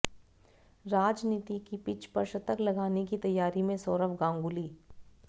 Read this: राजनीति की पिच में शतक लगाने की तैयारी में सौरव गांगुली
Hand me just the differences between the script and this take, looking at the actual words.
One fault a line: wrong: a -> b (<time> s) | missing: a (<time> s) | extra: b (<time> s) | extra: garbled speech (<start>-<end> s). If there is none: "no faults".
wrong: में -> पर (2.1 s)